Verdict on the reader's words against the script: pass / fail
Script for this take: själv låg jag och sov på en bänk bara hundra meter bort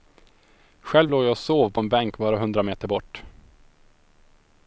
pass